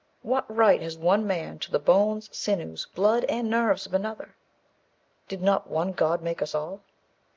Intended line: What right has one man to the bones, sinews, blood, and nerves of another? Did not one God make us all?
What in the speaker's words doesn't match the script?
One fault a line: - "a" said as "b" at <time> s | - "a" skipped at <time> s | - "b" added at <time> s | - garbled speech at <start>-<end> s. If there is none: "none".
none